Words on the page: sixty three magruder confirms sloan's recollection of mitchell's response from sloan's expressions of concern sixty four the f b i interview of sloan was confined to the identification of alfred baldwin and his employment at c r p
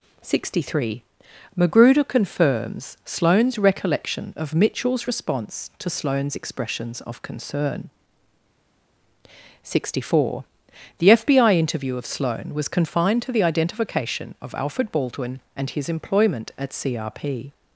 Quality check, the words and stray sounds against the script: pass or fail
fail